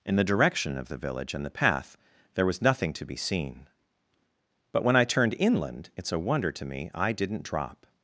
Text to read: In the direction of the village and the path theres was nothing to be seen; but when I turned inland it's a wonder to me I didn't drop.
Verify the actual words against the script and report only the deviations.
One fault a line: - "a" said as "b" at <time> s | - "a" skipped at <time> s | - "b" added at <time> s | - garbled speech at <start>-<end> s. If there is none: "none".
- "theres" said as "there" at 2.3 s